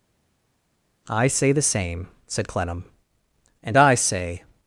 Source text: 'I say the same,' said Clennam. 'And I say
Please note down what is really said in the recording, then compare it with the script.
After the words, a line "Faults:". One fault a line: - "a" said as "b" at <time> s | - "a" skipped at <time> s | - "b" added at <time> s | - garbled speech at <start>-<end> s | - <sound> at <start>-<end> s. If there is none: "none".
'I say the same,' said Clennam. 'And I say
Faults:
none